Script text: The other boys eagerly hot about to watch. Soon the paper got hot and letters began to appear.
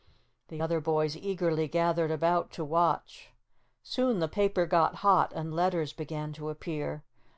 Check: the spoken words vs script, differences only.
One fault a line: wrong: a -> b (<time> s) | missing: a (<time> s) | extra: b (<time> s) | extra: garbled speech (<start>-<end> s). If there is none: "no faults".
wrong: hot -> gathered (1.7 s)